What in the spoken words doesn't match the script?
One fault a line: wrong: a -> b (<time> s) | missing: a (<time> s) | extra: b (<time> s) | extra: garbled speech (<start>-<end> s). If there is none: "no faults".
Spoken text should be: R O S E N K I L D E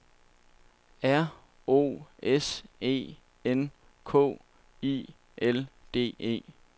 no faults